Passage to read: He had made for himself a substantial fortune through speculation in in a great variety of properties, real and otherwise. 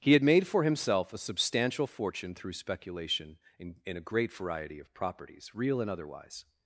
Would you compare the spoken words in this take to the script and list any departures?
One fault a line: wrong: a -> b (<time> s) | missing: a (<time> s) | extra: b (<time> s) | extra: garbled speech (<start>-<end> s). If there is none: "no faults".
no faults